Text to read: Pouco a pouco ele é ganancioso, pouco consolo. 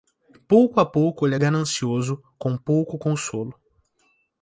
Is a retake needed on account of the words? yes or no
yes